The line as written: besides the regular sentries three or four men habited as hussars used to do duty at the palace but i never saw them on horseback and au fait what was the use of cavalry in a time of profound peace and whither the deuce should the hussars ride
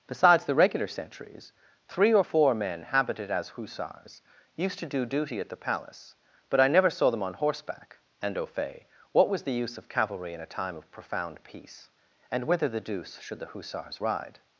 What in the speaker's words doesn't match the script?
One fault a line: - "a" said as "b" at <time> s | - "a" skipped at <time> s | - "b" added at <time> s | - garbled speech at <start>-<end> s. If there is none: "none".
none